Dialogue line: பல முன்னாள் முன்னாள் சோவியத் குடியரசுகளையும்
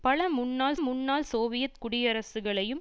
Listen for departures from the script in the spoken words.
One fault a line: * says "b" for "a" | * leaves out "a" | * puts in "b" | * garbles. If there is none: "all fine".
all fine